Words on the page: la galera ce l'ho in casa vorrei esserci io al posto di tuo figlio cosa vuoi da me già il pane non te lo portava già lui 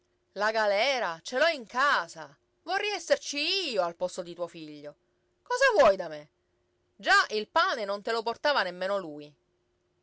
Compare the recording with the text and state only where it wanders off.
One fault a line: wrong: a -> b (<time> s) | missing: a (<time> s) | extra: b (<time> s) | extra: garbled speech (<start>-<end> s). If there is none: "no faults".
wrong: già -> nemmeno (8.6 s)